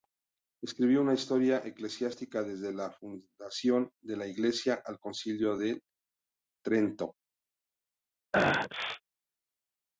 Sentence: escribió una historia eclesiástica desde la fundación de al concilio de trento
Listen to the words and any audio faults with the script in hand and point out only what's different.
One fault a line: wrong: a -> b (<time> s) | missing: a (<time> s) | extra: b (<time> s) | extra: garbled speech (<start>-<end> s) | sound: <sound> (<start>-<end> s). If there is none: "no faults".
extra: la iglesia (4.1 s)
sound: sneeze (8.3-9.0 s)